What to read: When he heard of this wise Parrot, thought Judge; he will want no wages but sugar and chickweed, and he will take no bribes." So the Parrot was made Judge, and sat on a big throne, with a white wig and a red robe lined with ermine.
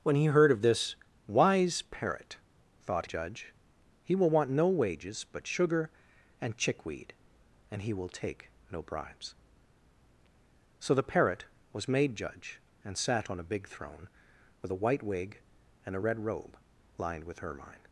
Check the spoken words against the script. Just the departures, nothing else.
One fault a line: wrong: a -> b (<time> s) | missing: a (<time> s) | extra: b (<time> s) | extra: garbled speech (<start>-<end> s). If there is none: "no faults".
no faults